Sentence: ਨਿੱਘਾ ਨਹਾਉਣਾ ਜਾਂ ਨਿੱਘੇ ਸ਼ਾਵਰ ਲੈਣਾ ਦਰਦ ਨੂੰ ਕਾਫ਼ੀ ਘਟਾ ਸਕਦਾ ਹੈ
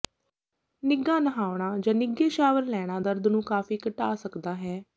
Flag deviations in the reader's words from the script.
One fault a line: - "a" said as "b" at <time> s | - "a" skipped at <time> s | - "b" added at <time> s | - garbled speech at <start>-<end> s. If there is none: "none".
none